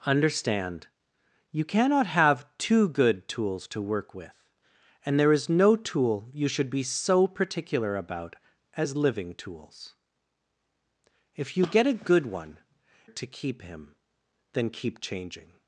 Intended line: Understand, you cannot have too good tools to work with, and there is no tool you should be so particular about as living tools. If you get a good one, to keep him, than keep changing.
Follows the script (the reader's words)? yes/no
yes